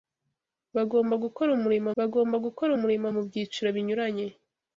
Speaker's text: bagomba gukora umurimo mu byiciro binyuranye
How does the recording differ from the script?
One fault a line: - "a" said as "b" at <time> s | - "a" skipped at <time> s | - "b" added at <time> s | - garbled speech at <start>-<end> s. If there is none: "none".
- "bagomba gukora umurimo" added at 2.0 s